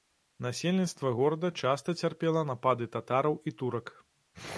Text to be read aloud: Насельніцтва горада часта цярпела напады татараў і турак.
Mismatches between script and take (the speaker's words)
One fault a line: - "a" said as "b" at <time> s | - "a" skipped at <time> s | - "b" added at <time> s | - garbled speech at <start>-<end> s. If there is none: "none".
none